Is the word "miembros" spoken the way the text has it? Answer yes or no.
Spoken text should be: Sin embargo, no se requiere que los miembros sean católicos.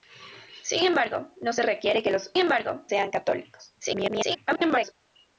no